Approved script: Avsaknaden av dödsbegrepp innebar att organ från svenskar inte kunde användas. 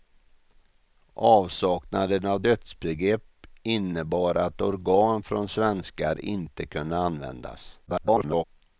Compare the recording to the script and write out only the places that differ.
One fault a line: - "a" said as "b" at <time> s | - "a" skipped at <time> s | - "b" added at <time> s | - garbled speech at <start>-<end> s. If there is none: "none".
- garbled speech at 7.9-8.4 s